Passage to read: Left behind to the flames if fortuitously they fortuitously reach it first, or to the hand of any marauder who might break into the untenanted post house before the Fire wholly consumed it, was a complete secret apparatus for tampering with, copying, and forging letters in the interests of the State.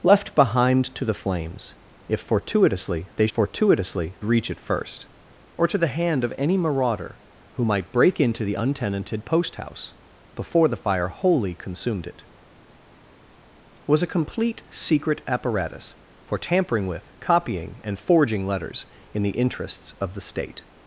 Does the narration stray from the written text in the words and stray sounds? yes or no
no